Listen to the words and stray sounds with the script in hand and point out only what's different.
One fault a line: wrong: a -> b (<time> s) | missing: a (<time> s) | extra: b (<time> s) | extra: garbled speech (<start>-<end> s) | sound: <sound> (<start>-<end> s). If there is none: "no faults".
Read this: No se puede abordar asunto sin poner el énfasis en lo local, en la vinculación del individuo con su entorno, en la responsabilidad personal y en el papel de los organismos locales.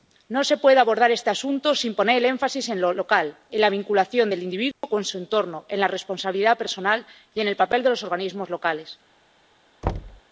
extra: este (1.1 s)
sound: dropout (4.7-4.8 s)
sound: thud (9.8-10.2 s)